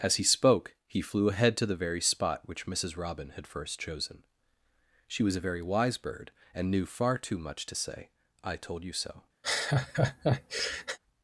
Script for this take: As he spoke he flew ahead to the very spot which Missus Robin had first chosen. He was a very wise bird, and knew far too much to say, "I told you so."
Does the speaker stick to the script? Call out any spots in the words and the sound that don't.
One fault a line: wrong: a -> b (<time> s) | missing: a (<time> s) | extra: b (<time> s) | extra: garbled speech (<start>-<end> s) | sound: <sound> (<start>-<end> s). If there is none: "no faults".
wrong: He -> She (5.1 s)
sound: laugh (9.4-11.0 s)